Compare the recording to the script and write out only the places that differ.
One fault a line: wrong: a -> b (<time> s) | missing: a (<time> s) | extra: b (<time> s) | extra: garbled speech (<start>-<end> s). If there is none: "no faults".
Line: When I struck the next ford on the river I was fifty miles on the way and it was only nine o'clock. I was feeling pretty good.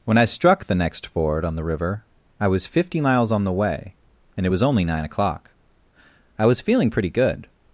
no faults